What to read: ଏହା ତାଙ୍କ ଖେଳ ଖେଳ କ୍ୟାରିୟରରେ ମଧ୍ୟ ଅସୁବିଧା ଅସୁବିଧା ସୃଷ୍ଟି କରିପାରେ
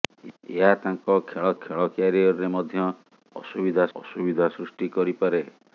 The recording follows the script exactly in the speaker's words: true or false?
true